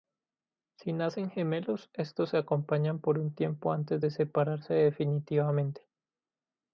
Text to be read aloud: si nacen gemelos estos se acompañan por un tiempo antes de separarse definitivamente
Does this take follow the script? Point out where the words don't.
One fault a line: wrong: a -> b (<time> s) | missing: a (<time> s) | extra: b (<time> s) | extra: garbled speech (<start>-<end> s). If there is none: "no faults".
no faults